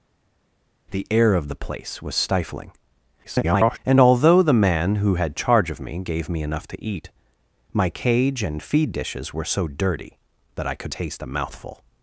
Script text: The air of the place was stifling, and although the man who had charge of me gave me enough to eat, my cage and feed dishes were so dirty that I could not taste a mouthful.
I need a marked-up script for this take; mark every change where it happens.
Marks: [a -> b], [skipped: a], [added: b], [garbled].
The air of the place was stifling, [garbled] and although the man who had charge of me gave me enough to eat, my cage and feed dishes were so dirty that I could [skipped: not] taste a mouthful.